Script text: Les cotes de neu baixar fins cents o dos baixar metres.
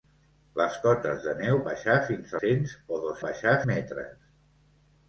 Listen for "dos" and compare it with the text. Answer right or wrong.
right